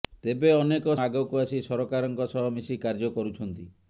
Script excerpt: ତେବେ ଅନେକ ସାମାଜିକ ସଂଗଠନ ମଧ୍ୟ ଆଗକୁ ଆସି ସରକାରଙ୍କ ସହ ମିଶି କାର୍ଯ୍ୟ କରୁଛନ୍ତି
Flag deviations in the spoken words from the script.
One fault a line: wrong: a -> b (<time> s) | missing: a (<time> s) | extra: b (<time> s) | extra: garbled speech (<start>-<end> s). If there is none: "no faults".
missing: ସାମାଜିକ ସଂଗଠନ ମଧ୍ୟ (0.9 s)